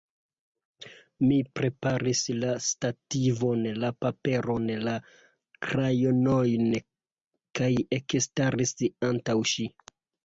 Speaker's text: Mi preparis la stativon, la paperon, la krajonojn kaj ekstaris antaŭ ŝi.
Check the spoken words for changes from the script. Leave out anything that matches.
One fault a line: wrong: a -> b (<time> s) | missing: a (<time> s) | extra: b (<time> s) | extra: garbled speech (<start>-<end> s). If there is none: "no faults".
no faults